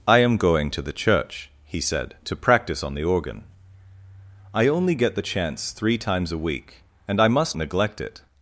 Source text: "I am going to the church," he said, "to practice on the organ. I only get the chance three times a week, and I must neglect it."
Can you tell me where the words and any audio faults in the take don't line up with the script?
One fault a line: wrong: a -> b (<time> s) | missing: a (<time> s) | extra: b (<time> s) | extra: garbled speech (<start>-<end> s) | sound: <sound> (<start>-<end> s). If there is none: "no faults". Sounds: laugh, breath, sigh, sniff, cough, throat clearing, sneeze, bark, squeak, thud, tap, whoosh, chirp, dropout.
no faults